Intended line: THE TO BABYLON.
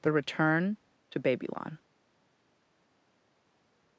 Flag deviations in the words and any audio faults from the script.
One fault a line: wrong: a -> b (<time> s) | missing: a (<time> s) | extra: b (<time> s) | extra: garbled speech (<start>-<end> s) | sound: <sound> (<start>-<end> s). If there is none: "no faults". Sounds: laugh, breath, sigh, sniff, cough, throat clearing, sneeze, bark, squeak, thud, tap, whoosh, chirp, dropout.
extra: RETURN (0.1 s)